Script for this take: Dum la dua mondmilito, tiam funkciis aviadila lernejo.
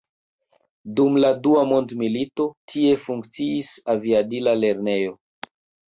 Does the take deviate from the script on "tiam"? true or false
true